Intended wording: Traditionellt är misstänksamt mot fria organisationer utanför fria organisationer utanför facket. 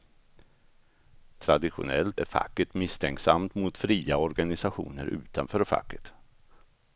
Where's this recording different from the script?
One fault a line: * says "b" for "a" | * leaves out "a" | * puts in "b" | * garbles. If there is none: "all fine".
* puts in "facket"
* leaves out "fria organisationer utanför"